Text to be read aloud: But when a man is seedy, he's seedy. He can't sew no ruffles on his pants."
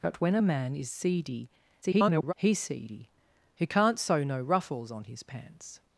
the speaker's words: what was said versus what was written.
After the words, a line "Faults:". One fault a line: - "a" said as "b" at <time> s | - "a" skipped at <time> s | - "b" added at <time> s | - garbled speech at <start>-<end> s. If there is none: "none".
But when a man is seedy, [garbled] he's seedy. He can't sew no ruffles on his pants."
Faults:
- garbled speech at 1.8-2.3 s